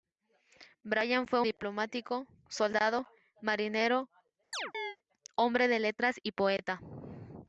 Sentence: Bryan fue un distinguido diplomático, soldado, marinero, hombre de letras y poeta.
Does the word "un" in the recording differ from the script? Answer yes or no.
yes